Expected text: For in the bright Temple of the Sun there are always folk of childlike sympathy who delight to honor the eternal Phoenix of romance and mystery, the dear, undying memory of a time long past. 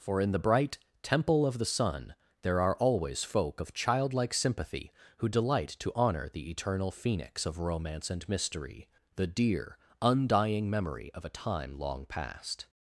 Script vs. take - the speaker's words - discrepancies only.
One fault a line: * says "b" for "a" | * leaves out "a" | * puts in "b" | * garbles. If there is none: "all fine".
all fine